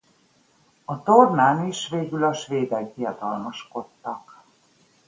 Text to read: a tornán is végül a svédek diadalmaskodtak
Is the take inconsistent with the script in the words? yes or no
no